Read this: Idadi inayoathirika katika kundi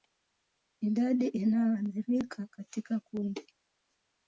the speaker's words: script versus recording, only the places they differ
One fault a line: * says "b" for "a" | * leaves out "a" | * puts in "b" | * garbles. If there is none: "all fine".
all fine